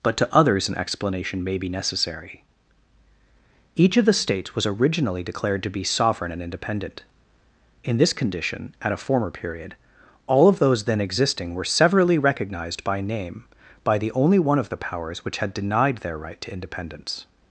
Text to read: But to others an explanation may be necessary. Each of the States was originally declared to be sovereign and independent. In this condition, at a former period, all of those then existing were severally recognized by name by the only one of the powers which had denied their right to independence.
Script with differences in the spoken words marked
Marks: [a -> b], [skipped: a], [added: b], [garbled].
But to others an explanation may be necessary. Each of the States was originally declared to be sovereign and independent. In this condition, at a former period, all of those then existing were severally recognized by name by the only one of the powers which had denied their right to independence.